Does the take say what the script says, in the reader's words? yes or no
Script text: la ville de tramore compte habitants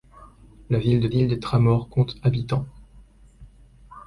no